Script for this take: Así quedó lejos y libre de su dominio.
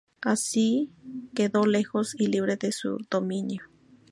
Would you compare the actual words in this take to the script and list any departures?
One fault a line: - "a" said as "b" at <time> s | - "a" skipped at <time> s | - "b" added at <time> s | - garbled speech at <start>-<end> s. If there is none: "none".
none